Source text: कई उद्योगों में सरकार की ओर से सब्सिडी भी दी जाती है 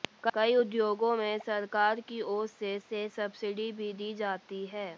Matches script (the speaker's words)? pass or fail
fail